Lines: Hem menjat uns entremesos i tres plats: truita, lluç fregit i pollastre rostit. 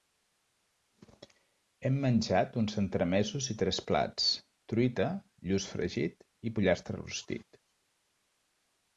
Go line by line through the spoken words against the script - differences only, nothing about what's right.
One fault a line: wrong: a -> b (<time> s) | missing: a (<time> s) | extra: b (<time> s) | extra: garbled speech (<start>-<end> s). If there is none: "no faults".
no faults